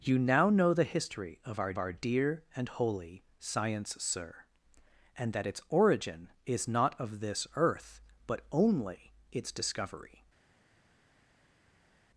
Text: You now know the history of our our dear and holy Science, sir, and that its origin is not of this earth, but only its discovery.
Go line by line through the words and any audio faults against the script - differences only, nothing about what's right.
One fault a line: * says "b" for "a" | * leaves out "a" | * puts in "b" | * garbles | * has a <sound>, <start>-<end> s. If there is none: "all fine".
all fine